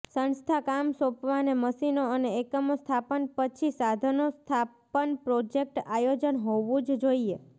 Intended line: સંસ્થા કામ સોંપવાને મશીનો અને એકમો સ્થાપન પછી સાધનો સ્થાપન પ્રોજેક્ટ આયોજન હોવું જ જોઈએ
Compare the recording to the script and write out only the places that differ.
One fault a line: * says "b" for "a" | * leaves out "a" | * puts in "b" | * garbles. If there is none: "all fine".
all fine